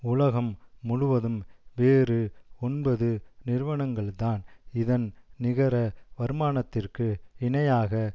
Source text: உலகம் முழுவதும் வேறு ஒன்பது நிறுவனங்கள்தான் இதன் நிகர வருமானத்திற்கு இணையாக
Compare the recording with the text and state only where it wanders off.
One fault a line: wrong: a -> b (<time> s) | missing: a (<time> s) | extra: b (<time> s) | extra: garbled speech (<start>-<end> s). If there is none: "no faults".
no faults